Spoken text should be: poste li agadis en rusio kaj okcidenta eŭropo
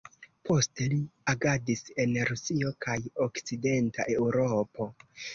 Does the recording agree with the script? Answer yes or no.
yes